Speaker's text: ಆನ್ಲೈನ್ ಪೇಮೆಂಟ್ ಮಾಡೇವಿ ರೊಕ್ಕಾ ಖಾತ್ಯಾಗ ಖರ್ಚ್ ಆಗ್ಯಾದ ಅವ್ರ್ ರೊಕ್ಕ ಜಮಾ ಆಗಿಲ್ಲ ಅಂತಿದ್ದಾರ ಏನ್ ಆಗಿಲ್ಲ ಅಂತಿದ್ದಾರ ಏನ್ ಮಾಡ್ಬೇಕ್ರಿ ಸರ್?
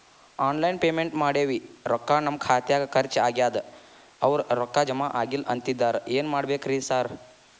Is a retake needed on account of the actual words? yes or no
yes